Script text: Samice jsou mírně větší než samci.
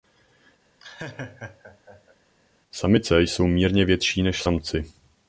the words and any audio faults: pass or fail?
fail